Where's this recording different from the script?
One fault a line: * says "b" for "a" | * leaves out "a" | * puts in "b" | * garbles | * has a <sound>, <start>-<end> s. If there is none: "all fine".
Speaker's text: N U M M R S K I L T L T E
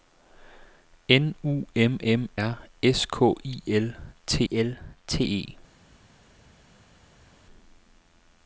all fine